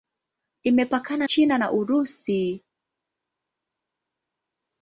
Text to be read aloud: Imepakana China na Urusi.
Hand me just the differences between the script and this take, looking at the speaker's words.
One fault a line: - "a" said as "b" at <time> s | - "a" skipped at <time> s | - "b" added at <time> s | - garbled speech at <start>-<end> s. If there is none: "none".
none